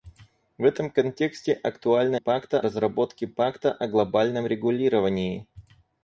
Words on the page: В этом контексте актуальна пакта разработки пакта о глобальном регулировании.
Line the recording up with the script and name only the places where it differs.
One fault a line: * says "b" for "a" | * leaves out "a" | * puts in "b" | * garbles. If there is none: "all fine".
all fine